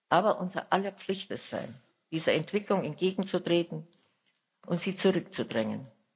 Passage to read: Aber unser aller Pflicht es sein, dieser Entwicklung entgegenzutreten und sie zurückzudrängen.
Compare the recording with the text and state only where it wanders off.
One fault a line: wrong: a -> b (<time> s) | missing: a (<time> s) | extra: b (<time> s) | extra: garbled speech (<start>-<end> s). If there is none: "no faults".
no faults